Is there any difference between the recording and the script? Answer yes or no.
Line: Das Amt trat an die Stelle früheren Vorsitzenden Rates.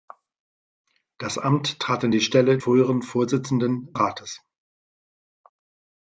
no